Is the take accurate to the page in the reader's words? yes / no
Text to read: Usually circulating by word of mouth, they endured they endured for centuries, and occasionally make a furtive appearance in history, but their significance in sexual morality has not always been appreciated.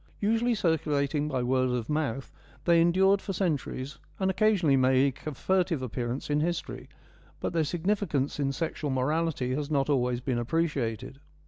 no